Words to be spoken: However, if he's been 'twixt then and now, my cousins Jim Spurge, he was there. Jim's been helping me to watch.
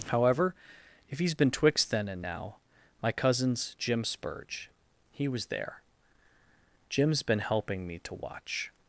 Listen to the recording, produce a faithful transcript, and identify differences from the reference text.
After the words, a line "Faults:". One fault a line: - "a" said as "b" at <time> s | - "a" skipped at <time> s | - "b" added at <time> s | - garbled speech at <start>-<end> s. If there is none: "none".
However, if he's been 'twixt then and now, my cousins Jim Spurge, he was there. Jim's been helping me to watch.
Faults:
none